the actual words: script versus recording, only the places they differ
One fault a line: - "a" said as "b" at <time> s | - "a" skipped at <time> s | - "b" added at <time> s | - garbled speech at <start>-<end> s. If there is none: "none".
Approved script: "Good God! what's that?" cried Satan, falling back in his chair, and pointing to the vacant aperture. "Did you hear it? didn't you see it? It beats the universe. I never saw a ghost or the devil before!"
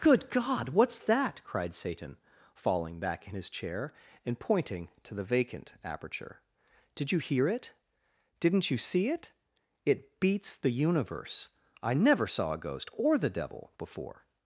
none